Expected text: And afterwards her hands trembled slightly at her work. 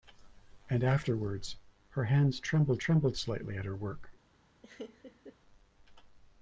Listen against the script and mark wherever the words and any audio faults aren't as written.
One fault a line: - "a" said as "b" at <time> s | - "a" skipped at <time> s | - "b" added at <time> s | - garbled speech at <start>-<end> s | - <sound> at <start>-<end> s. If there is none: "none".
- "trembled" added at 2.8 s
- laugh at 4.6-5.4 s